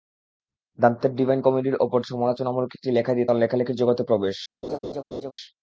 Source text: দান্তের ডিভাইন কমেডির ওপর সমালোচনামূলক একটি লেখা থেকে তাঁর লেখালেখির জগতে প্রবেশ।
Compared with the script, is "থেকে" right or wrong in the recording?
wrong